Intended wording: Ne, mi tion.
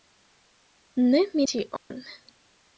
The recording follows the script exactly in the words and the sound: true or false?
false